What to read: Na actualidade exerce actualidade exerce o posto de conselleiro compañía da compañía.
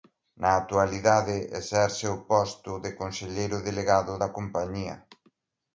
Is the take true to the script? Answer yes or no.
no